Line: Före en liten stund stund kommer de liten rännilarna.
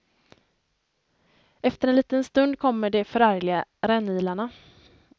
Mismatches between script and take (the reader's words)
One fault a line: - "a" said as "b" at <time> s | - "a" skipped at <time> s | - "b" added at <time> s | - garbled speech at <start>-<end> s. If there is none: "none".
- "Före" said as "Efter" at 1.6 s
- "stund" skipped at 2.6 s
- "liten" said as "förargliga" at 3.0 s